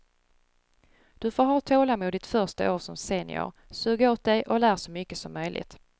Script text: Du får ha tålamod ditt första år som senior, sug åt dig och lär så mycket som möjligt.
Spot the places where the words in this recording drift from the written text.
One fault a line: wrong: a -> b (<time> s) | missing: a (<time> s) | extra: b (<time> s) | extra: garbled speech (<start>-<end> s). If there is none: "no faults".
no faults